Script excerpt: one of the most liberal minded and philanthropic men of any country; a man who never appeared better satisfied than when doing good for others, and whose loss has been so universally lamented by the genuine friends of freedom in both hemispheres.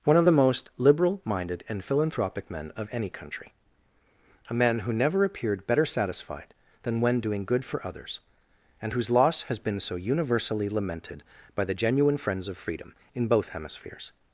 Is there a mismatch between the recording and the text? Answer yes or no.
no